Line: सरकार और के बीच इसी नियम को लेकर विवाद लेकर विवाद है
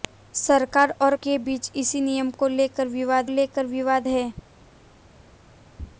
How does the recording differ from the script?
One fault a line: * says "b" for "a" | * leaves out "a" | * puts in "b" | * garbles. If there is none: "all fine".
all fine